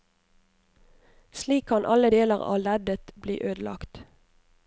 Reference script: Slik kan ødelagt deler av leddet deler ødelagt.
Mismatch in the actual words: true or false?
true